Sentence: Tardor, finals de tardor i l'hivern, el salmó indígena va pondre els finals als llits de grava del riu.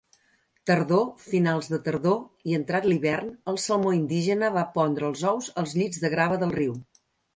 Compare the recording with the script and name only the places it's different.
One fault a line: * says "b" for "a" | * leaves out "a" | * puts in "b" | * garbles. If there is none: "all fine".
* puts in "entrat"
* says "ous" for "finals"